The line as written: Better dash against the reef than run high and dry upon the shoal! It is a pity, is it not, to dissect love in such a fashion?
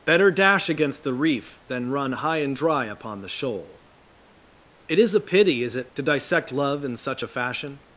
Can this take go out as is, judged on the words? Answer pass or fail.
fail